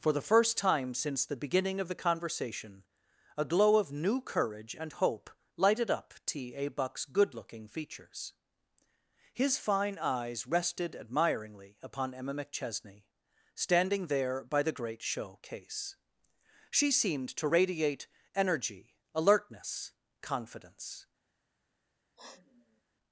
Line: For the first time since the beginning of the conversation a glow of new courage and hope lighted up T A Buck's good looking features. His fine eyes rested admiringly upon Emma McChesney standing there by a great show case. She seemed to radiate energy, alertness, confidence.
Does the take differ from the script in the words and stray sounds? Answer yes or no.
yes